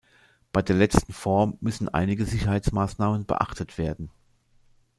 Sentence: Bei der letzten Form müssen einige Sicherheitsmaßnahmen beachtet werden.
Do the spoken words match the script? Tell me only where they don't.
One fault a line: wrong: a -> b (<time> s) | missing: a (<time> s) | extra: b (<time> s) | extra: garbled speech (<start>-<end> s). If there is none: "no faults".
no faults